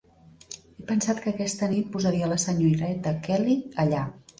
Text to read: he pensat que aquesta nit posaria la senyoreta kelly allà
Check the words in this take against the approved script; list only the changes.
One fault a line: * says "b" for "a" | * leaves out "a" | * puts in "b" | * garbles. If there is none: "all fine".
all fine